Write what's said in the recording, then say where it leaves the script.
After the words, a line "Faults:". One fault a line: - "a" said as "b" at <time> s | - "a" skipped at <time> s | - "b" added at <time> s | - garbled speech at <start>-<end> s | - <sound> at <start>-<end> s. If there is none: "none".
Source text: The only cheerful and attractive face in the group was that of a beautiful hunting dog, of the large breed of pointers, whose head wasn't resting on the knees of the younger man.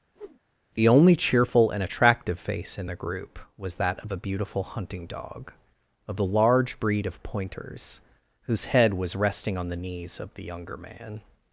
The only cheerful and attractive face in the group was that of a beautiful hunting dog, of the large breed of pointers, whose head was resting on the knees of the younger man.
Faults:
- whoosh at 0.2-0.4 s
- "wasn't" said as "was" at 8.9 s